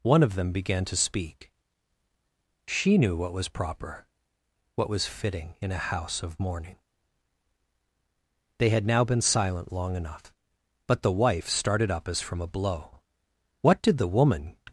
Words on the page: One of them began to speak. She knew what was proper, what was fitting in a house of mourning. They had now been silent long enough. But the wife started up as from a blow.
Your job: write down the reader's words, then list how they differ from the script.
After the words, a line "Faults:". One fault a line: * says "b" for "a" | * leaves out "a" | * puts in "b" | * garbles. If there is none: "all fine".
One of them began to speak. She knew what was proper, what was fitting in a house of mourning. They had now been silent long enough. But the wife started up as from a blow. What did the woman
Faults:
* puts in "What did the woman"